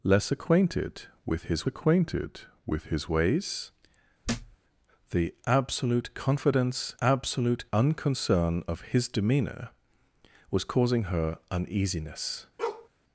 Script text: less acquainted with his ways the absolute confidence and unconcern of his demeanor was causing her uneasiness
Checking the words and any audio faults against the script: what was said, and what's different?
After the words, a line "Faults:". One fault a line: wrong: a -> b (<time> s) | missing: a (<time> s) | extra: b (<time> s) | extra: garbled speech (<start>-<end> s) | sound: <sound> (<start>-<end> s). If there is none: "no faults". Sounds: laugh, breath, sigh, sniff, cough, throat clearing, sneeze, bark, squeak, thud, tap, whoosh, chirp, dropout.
less acquainted with his acquainted with his ways the absolute confidence absolute unconcern of his demeanor was causing her uneasiness
Faults:
extra: acquainted with his (1.7 s)
sound: thud (4.2-4.6 s)
wrong: and -> absolute (7.0 s)
sound: bark (12.6-12.9 s)